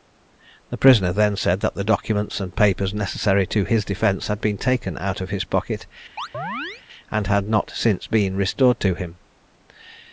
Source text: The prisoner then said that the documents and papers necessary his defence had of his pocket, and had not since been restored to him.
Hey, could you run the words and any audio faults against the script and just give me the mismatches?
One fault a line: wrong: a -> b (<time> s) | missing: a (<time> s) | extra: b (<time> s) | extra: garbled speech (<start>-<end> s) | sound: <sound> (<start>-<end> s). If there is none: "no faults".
extra: to (3.5 s)
extra: been taken out (4.4 s)
sound: chirp (6.2-6.8 s)